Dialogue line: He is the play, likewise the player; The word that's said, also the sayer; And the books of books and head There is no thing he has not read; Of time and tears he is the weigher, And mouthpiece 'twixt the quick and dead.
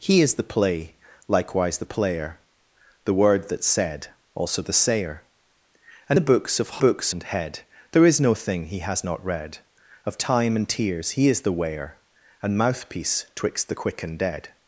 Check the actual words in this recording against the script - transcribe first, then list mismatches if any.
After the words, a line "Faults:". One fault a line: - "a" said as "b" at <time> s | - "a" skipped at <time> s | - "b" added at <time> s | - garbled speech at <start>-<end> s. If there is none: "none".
He is the play, likewise the player; The word that's said, also the sayer; And the books of books and head There is no thing he has not read; Of time and tears he is the weigher, And mouthpiece 'twixt the quick and dead.
Faults:
none